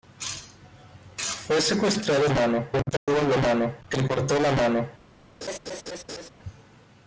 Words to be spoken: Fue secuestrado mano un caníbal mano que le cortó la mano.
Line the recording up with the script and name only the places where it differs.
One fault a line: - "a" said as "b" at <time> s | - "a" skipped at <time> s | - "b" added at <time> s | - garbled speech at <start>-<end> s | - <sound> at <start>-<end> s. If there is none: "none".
- dropout at 3.0-3.1 s
- laugh at 5.4-6.3 s